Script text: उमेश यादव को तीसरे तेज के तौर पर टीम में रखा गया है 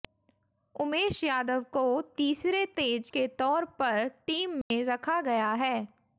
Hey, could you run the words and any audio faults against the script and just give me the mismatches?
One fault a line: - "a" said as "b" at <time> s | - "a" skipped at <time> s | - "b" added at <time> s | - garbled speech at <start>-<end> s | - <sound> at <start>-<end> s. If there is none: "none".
- dropout at 4.6-4.7 s